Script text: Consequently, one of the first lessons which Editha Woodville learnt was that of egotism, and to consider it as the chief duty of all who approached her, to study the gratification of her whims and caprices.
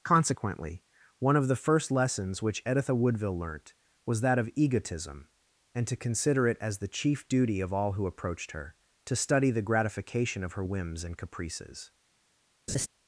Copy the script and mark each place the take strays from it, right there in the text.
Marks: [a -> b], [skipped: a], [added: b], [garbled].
Consequently, one of the first lessons which Editha Woodville learnt was that of egotism, and to consider it as the chief duty of all who approached her, to study the gratification of her whims and caprices.